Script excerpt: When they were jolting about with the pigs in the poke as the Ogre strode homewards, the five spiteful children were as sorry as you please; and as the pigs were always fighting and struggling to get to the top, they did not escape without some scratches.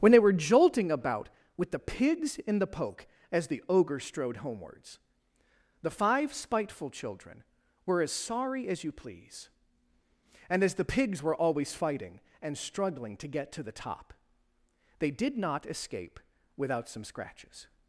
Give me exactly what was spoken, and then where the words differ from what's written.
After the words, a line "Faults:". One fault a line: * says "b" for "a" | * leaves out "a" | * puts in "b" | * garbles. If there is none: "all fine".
When they were jolting about with the pigs in the poke as the Ogre strode homewards, the five spiteful children were as sorry as you please; and as the pigs were always fighting and struggling to get to the top, they did not escape without some scratches.
Faults:
all fine